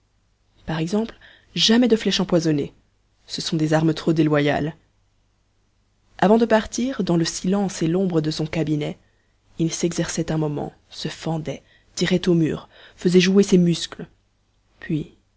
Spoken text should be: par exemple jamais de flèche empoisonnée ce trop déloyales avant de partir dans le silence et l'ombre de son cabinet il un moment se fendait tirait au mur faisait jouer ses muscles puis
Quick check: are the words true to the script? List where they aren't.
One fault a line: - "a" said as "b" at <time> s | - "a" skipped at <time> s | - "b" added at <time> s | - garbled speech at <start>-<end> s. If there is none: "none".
- "sont des armes" added at 3.4 s
- "s'exerçait" added at 9.7 s